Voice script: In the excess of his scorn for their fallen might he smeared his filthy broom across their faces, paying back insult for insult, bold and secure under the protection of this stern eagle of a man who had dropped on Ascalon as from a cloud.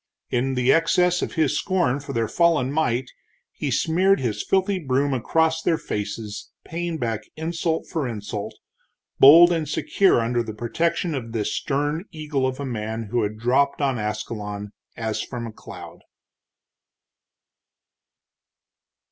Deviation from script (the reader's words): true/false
false